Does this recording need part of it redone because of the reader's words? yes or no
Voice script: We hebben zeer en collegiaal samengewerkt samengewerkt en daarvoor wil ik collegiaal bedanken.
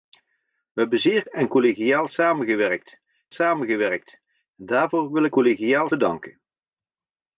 no